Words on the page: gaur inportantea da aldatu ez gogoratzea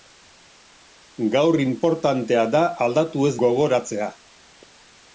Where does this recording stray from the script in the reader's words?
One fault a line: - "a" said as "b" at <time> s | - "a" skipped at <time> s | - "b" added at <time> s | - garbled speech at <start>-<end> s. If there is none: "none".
none